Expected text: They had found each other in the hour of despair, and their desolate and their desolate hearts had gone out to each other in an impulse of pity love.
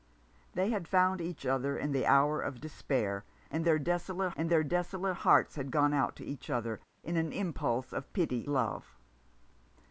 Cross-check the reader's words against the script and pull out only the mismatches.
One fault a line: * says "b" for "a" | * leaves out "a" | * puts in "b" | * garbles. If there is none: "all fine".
all fine